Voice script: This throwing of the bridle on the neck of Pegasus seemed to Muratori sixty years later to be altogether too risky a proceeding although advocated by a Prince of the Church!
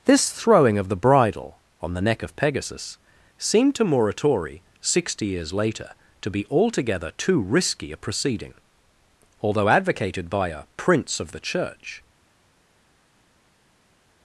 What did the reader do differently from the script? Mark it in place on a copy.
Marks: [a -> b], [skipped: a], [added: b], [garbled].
This throwing of the bridle on the neck of Pegasus seemed to Muratori sixty years later to be altogether too risky a proceeding although advocated by a Prince of the Church!